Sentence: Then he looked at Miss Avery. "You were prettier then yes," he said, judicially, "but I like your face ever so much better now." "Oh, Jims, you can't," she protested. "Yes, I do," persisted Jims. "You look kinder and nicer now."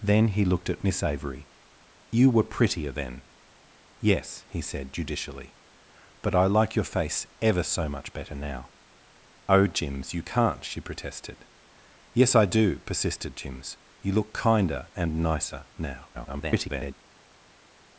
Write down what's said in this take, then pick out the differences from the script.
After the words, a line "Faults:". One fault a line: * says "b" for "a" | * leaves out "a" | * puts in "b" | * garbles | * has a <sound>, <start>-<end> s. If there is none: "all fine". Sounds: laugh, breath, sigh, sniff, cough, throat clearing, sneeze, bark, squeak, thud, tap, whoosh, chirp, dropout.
Then he looked at Miss Avery. "You were prettier then yes," he said, judicially, "but I like your face ever so much better now." "Oh, Jims, you can't," she protested. "Yes, I do," persisted Jims. "You look kinder and nicer now." [garbled]
Faults:
* garbles